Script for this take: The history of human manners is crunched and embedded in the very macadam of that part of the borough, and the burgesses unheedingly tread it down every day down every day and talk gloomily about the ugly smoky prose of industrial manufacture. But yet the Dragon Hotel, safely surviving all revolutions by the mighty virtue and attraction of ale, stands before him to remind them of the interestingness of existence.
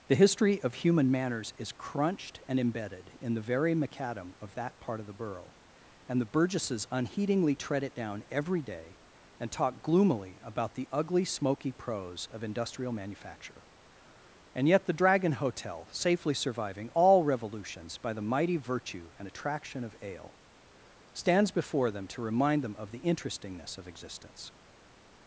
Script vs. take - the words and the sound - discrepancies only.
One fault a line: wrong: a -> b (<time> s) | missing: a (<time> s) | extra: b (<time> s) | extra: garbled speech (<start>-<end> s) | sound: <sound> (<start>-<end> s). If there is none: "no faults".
missing: down every day (9.0 s)
wrong: But -> And (14.5 s)
wrong: him -> them (21.9 s)